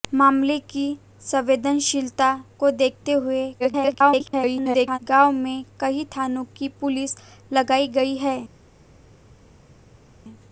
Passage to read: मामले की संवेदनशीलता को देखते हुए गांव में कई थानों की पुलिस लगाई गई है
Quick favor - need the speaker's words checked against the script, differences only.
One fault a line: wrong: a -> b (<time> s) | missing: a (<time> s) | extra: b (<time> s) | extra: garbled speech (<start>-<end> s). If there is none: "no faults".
extra: garbled speech (3.6-5.0 s)